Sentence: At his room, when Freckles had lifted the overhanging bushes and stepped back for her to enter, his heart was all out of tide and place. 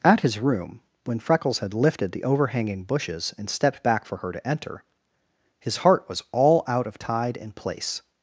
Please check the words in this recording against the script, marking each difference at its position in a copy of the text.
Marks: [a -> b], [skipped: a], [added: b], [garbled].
At his room, when Freckles had lifted the overhanging bushes and stepped back for her to enter, his heart was all out of tide and place.